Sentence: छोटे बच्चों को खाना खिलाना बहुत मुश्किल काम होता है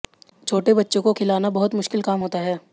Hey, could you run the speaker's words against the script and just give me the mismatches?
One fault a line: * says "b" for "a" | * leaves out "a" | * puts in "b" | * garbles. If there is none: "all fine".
* leaves out "खाना"